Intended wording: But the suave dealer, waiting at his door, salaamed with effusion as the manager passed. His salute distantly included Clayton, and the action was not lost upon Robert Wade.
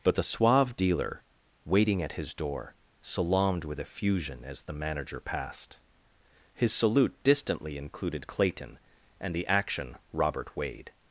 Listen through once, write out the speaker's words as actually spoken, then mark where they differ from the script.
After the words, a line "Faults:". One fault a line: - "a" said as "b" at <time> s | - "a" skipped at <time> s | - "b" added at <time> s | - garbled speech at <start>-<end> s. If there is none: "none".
But the suave dealer, waiting at his door, salaamed with effusion as the manager passed. His salute distantly included Clayton, and the action Robert Wade.
Faults:
- "was not lost upon" skipped at 10.0 s